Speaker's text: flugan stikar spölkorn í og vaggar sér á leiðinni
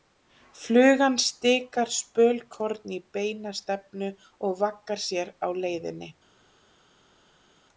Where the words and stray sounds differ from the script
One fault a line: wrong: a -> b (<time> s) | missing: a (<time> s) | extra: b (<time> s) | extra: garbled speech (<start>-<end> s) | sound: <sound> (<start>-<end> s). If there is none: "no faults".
extra: beina stefnu (3.2 s)